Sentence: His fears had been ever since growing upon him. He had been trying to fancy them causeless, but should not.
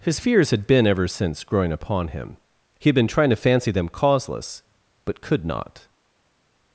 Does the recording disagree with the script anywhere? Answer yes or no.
yes